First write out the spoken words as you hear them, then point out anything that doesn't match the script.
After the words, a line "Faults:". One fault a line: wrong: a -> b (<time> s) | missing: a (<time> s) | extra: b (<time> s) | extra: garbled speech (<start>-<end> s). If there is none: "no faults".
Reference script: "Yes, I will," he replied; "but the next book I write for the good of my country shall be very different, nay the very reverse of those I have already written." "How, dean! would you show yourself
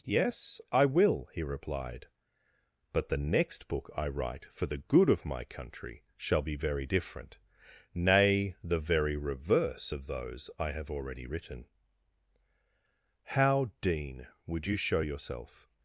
"Yes, I will," he replied; "but the next book I write for the good of my country shall be very different, nay the very reverse of those I have already written." "How, dean! would you show yourself
Faults:
no faults